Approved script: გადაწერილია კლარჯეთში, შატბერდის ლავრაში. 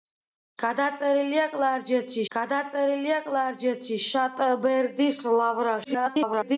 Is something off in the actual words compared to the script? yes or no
yes